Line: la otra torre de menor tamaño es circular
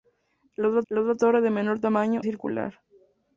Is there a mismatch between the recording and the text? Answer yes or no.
yes